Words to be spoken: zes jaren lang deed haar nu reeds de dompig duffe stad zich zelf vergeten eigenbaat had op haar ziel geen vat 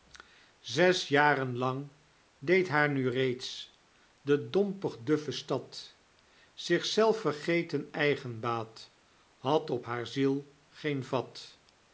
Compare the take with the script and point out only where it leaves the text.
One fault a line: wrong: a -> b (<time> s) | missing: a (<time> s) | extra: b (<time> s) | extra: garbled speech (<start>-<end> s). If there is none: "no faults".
no faults